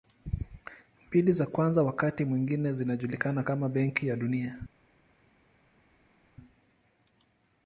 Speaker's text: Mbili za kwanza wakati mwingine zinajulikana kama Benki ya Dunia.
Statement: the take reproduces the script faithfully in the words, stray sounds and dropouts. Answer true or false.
true